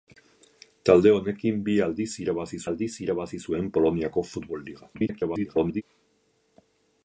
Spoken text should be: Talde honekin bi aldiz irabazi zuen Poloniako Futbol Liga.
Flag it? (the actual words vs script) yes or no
yes